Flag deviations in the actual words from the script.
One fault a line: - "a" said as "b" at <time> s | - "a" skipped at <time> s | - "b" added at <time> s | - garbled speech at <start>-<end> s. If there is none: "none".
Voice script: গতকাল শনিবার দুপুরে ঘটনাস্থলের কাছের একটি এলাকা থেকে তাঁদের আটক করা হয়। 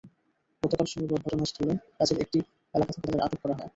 - "দুপুরে" skipped at 1.2 s